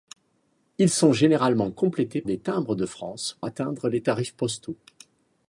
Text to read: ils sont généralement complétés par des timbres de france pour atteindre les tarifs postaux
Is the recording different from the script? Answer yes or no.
yes